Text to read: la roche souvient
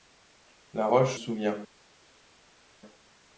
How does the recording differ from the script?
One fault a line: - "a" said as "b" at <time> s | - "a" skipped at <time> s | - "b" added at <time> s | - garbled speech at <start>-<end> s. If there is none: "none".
none